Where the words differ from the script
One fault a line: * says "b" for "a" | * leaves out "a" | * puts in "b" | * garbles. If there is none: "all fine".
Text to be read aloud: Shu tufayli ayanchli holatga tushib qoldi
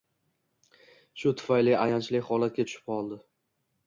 all fine